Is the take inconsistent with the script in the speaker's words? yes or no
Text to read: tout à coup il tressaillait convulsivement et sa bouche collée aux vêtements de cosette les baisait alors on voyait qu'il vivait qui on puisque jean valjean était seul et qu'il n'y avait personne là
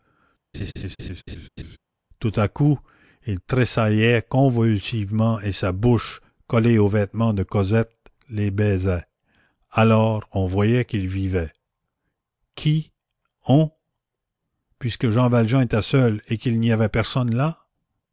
no